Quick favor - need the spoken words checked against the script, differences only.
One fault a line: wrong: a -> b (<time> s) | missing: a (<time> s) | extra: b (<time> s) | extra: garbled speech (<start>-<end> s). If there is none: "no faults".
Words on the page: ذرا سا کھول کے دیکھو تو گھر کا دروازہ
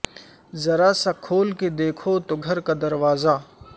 no faults